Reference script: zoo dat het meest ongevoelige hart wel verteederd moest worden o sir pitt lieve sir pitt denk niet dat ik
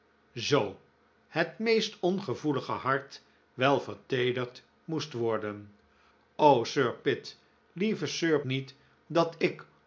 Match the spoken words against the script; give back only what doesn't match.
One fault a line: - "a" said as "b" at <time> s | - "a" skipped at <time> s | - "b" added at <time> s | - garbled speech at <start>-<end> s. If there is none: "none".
- "dat" skipped at 0.8 s
- "pitt denk" skipped at 8.4 s